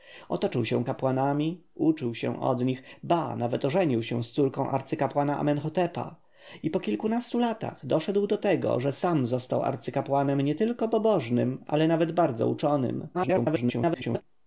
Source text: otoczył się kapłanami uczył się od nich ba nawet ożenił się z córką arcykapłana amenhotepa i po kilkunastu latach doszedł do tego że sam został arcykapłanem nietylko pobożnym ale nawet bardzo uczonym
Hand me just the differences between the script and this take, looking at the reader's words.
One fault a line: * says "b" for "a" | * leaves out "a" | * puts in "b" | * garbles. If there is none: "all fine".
* garbles